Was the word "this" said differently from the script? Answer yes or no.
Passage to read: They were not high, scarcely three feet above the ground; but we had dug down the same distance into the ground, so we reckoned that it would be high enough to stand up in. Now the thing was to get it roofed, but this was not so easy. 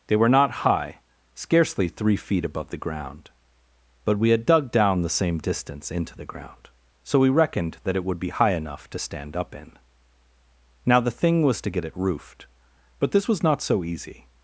no